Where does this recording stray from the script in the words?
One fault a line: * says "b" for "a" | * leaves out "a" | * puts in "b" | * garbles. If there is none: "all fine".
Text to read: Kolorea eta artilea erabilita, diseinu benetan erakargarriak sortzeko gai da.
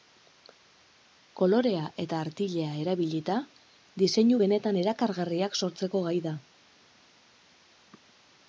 all fine